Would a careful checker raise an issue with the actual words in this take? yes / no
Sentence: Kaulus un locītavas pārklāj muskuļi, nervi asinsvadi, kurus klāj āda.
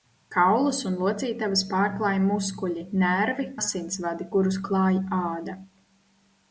no